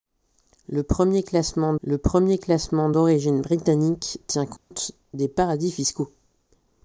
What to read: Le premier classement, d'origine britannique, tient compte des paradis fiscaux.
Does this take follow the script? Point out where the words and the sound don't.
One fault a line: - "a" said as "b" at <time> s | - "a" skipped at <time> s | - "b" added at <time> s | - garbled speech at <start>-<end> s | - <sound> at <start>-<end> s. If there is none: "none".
- "le premier classement" added at 1.8 s
- dropout at 4.6-4.7 s